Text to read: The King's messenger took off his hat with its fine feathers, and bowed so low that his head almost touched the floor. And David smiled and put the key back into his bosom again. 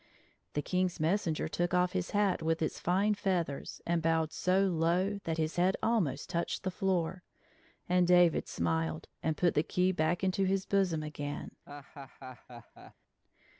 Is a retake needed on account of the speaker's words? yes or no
no